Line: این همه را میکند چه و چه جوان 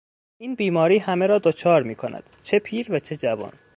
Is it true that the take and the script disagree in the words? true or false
true